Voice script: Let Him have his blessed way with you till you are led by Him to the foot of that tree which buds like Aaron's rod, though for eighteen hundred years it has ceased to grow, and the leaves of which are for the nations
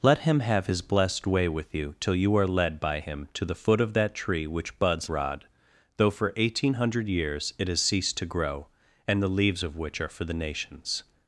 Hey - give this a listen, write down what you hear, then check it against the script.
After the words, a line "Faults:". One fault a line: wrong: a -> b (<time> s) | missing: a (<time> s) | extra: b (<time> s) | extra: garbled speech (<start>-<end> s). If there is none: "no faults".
Let Him have his blessed way with you till you are led by Him to the foot of that tree which buds rod, though for eighteen hundred years it has ceased to grow, and the leaves of which are for the nations
Faults:
missing: like Aaron's (5.1 s)